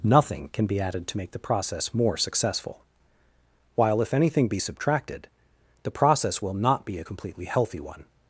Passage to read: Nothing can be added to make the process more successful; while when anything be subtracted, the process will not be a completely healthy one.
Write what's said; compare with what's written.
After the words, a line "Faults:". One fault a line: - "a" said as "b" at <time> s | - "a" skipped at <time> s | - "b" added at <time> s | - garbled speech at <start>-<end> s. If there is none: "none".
Nothing can be added to make the process more successful; while if anything be subtracted, the process will not be a completely healthy one.
Faults:
- "when" said as "if" at 4.0 s